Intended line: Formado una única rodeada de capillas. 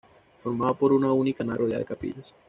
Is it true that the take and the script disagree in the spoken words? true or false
true